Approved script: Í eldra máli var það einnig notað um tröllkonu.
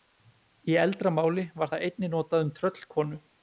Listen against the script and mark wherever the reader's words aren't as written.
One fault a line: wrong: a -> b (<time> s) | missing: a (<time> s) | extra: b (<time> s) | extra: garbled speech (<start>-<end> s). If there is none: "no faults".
no faults